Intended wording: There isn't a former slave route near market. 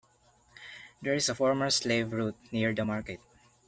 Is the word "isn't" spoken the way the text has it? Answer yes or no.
no